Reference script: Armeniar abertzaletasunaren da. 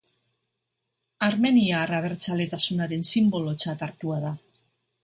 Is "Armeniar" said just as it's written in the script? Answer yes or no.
yes